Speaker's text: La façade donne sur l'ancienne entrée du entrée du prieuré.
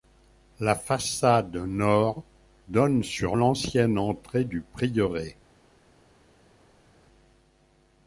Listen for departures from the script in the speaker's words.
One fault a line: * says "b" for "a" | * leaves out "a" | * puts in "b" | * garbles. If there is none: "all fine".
* puts in "nord"
* leaves out "entrée du"